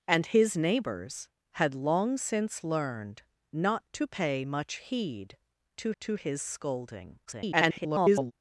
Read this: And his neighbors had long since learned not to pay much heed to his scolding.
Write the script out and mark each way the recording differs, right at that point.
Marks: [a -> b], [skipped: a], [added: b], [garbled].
And his neighbors had long since learned not to pay much heed to [added: to] his scolding. [garbled]